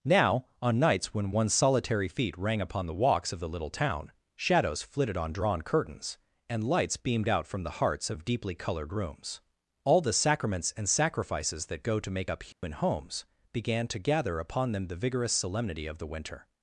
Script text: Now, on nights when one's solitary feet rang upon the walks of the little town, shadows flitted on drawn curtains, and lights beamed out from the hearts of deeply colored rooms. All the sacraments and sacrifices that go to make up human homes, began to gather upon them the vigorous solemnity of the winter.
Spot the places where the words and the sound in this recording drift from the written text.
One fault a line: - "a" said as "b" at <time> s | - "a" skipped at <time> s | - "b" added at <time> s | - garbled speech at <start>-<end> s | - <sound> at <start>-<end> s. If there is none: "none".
- dropout at 12.5-12.6 s